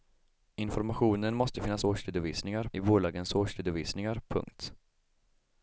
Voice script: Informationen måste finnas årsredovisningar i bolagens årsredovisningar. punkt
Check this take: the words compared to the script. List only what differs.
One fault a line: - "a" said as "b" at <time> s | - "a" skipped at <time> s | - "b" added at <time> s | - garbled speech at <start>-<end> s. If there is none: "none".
none